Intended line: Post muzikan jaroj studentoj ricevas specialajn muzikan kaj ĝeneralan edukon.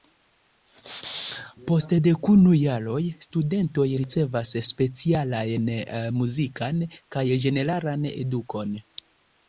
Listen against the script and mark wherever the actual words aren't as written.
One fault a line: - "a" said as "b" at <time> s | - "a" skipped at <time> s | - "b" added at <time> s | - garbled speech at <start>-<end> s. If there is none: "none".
- "muzikan" said as "dekunu" at 2.0 s